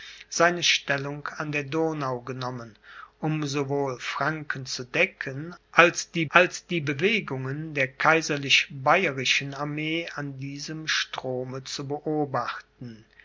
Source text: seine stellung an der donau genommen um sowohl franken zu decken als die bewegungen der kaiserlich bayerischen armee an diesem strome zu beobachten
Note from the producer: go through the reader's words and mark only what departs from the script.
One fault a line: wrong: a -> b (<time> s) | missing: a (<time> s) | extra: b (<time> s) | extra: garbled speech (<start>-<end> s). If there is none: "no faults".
extra: als die (6.3 s)